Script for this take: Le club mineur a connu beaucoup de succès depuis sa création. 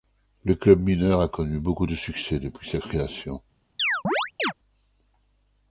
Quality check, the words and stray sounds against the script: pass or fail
fail